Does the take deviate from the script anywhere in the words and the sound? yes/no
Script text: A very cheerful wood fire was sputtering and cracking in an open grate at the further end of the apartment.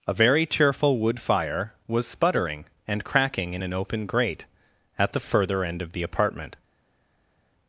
no